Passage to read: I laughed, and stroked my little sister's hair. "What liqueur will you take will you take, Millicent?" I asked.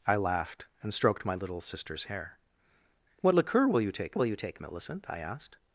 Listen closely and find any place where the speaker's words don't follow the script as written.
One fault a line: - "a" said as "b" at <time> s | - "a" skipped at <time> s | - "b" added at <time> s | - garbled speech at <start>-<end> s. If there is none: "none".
none